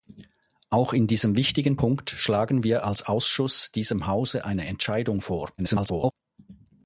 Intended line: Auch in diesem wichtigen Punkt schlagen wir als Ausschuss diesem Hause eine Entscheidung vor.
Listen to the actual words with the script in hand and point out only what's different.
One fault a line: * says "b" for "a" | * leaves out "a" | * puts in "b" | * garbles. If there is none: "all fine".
* garbles